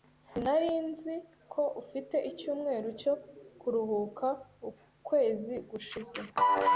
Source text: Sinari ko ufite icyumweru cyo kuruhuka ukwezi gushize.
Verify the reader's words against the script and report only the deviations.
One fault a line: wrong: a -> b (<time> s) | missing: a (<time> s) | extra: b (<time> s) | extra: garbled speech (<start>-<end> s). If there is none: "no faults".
extra: nzi (0.9 s)